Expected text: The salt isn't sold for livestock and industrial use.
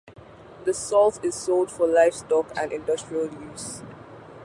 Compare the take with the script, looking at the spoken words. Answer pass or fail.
fail